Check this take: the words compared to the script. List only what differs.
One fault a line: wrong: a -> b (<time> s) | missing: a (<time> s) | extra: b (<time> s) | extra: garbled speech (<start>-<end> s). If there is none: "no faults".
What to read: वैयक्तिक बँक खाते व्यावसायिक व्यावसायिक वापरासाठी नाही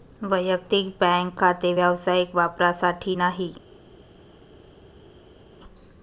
missing: व्यावसायिक (2.3 s)